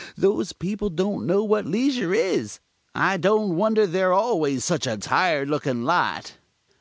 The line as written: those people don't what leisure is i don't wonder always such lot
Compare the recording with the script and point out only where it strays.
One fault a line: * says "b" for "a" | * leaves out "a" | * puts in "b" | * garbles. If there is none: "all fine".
* puts in "know"
* puts in "they're"
* puts in "a tired looking"